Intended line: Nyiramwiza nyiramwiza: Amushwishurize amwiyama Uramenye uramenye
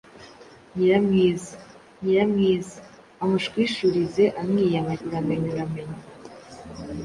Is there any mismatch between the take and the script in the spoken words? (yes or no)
no